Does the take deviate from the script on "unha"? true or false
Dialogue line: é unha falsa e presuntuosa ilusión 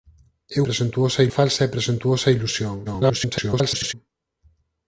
true